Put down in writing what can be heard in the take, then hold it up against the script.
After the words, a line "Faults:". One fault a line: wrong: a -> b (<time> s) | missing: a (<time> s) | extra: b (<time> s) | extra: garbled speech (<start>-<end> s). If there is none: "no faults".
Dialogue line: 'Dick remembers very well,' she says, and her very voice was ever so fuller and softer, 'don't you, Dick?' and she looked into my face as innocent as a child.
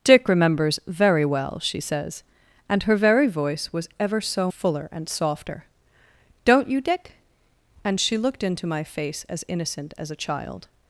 'Dick remembers very well,' she says, and her very voice was ever so fuller and softer, 'don't you, Dick?' and she looked into my face as innocent as a child.
Faults:
no faults